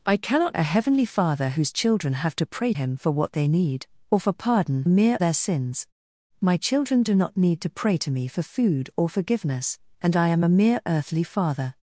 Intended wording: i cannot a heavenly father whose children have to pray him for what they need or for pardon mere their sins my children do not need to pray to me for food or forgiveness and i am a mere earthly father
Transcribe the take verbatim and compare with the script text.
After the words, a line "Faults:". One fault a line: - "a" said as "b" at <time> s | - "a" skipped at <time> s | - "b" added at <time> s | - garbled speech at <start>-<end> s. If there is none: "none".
i cannot a heavenly father whose children have to pray him for what they need or for pardon mere their sins my children do not need to pray to me for food or forgiveness and i am a mere earthly father
Faults:
none